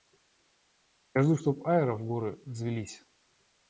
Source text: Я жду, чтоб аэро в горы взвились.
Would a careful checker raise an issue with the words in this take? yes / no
no